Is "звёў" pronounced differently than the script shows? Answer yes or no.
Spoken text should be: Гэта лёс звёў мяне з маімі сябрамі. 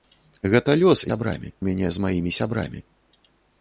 yes